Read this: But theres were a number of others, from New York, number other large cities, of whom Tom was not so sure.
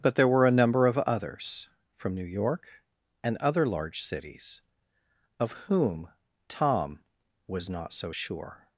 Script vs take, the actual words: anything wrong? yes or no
yes